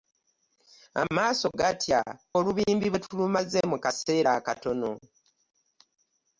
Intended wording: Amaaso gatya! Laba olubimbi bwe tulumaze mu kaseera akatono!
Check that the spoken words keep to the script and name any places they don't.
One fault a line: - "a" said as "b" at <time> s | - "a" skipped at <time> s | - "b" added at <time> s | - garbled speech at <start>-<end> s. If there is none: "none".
- "Laba" skipped at 2.0 s